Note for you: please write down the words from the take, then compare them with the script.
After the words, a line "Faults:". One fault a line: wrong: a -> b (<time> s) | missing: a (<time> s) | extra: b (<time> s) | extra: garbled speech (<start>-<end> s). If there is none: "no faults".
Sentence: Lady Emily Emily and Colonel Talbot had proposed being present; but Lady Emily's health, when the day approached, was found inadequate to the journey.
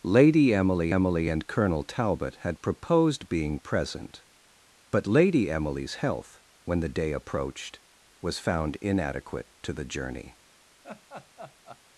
Lady Emily Emily and Colonel Talbot had proposed being present; but Lady Emily's health, when the day approached, was found inadequate to the journey.
Faults:
no faults